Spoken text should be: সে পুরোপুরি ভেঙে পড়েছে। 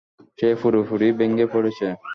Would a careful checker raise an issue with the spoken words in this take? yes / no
no